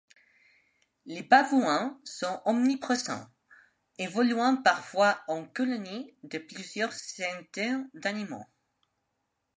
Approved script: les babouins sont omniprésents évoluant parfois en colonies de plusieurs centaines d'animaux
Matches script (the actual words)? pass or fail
pass